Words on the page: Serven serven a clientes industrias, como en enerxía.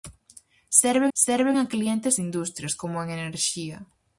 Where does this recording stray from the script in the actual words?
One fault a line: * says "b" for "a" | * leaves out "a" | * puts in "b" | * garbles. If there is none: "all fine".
all fine